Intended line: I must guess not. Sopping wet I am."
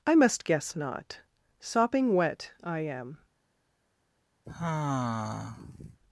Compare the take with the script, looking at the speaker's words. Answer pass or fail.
pass